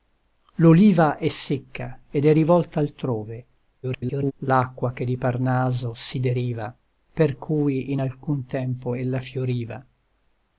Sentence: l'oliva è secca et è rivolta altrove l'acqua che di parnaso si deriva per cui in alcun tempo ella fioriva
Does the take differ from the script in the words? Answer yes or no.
yes